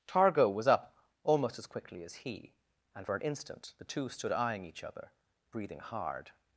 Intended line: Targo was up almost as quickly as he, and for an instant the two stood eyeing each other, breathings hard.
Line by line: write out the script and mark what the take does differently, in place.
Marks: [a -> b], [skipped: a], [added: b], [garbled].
Targo was up almost as quickly as he, and for an instant the two stood eyeing each other, [breathings -> breathing] hard.